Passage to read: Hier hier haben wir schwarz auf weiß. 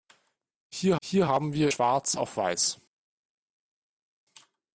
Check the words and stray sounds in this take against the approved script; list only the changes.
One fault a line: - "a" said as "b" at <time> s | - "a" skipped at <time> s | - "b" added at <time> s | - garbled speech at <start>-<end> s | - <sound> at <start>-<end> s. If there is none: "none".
none